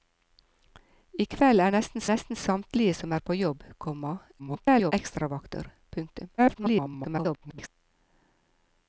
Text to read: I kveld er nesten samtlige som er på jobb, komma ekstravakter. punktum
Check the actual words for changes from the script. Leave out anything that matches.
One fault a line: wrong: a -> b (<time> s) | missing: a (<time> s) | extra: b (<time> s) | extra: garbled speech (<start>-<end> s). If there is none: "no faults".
extra: nesten (2.1 s)
extra: garbled speech (4.4-4.9 s)
extra: garbled speech (6.4-7.7 s)